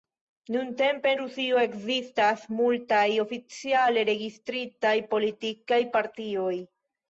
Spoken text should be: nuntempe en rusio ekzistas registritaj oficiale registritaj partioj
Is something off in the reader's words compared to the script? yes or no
yes